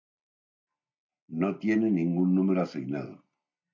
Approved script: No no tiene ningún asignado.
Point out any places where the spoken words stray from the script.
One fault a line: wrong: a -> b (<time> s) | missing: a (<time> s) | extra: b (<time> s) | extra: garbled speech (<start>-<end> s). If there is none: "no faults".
missing: no (1.6 s)
extra: número (2.3 s)